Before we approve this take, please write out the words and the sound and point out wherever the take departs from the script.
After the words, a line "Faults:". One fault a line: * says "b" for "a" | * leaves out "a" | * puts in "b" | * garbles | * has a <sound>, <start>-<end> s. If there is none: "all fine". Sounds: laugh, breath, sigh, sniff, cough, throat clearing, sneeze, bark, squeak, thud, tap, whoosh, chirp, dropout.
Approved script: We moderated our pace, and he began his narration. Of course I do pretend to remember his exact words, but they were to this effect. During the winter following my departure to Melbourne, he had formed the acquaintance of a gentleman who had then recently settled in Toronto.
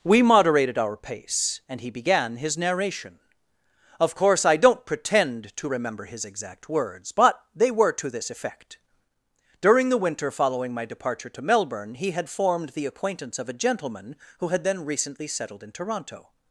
We moderated our pace, and he began his narration. Of course I don't pretend to remember his exact words, but they were to this effect. During the winter following my departure to Melbourne, he had formed the acquaintance of a gentleman who had then recently settled in Toronto.
Faults:
* says "don't" for "do"